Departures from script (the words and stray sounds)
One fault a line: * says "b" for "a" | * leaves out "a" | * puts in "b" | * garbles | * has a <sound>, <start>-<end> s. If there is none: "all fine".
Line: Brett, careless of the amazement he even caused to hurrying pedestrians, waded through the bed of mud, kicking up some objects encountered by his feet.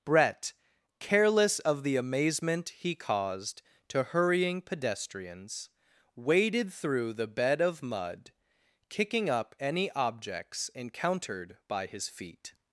* leaves out "even"
* says "any" for "some"